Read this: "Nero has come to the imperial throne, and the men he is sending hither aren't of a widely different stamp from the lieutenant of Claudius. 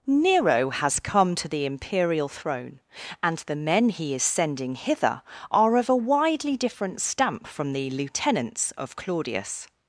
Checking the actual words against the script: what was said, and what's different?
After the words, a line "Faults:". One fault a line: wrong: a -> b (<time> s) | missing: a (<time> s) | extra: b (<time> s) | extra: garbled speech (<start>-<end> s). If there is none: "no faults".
"Nero has come to the imperial throne, and the men he is sending hither are of a widely different stamp from the lieutenants of Claudius.
Faults:
wrong: aren't -> are (5.5 s)
wrong: lieutenant -> lieutenants (7.9 s)